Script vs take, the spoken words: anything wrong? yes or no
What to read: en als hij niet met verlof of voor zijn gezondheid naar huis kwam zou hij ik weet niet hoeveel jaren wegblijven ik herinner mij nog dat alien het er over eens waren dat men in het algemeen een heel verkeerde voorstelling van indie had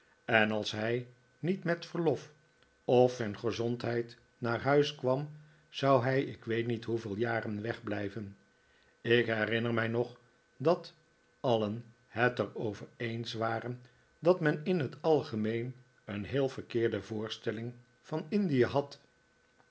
yes